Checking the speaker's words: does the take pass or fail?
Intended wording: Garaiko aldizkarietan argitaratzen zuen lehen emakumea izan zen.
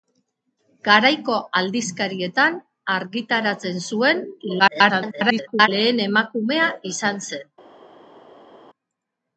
fail